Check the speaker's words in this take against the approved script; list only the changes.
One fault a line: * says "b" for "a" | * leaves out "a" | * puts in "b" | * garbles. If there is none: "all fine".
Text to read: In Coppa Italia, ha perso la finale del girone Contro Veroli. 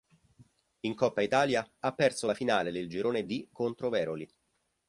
* puts in "D"